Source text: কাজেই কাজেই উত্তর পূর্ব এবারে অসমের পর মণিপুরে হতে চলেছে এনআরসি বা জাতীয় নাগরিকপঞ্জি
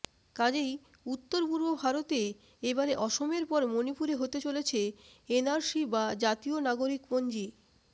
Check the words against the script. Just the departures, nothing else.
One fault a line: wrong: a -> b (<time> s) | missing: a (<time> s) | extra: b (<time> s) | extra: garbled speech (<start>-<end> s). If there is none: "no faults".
missing: কাজেই (0.7 s)
extra: ভারতে (1.8 s)